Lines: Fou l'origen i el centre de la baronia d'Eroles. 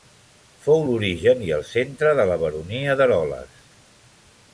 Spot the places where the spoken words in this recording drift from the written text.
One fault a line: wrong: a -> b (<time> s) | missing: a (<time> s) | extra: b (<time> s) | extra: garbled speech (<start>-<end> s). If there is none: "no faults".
no faults